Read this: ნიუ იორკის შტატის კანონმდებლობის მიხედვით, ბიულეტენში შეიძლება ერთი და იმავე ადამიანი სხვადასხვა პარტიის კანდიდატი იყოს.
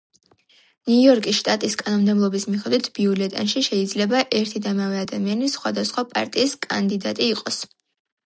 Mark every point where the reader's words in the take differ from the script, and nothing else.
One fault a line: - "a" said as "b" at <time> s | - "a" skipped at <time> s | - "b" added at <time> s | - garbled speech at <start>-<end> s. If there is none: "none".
none